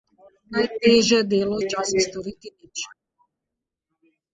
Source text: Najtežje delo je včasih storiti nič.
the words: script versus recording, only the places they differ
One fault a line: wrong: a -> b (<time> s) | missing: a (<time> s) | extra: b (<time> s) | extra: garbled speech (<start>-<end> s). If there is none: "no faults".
missing: je (1.6 s)